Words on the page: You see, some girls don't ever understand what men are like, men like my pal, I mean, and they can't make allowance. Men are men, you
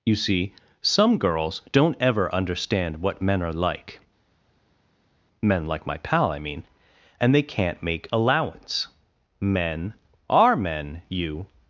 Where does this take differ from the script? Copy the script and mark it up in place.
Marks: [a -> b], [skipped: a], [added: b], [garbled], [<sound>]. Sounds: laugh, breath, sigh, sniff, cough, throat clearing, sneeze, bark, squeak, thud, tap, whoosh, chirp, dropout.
You see, some girls don't ever understand what men are like, men like my pal, I mean, and they can't make allowance. Men are men, you